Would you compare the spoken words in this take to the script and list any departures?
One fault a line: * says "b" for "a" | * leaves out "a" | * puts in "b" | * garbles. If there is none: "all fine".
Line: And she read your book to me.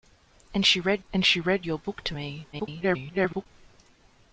* puts in "and she read"
* garbles